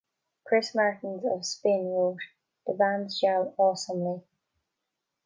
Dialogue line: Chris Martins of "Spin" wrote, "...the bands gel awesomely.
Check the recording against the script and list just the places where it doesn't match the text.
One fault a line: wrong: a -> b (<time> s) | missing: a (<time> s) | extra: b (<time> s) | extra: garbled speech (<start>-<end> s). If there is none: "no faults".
no faults